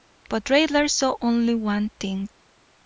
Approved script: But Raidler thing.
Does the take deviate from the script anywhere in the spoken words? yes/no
yes